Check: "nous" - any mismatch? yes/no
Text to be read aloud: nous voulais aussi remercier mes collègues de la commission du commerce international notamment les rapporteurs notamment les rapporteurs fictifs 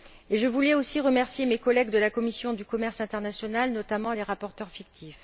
yes